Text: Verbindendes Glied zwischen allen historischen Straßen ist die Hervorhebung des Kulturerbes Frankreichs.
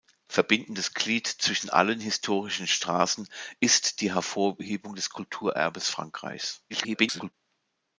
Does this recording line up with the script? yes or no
no